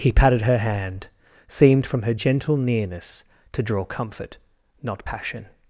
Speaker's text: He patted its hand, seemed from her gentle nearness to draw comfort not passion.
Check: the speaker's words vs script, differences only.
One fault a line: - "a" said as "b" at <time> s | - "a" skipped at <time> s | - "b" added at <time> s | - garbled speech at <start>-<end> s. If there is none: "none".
- "its" said as "her" at 0.4 s